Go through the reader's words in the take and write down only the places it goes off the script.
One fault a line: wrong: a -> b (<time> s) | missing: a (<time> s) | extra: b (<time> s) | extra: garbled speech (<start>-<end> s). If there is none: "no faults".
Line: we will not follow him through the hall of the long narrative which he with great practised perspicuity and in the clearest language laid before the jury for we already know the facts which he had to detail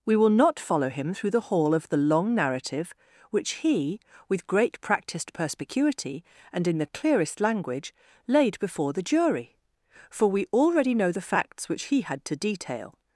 no faults